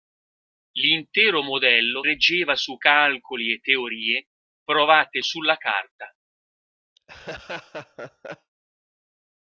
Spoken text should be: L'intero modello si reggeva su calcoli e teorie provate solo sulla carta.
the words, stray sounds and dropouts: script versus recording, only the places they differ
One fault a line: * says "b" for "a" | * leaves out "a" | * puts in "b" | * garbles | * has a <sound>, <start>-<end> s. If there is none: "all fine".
* leaves out "si"
* leaves out "solo"
* has a laugh, 7.0-8.5 s